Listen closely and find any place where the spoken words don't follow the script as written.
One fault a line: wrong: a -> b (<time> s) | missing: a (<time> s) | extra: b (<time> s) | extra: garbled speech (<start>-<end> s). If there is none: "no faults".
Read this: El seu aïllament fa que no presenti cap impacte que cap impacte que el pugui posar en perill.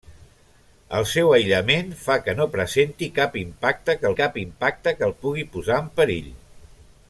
no faults